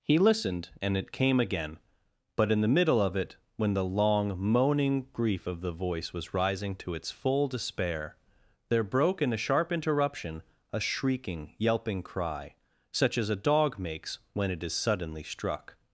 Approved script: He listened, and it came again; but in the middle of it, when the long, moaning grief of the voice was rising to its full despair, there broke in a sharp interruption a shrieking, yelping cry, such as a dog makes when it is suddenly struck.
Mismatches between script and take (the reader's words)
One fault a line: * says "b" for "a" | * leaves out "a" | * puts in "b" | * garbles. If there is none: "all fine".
all fine